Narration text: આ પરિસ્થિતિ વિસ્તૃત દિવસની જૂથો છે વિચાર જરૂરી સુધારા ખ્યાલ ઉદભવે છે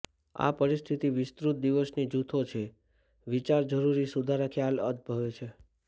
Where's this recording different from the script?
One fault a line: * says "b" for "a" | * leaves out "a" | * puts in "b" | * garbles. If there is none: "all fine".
all fine